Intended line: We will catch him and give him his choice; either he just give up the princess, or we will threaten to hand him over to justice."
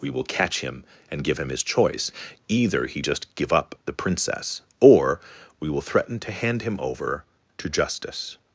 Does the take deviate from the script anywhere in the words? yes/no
no